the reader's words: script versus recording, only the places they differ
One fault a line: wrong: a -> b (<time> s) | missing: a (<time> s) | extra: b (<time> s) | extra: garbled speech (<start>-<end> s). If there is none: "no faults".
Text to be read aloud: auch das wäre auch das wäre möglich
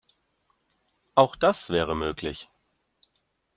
missing: auch das wäre (1.9 s)